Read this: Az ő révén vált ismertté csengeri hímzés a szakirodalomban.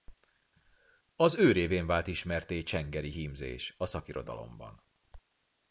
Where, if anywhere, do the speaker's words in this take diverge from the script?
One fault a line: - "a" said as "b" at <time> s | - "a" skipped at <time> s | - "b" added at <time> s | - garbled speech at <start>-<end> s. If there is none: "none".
none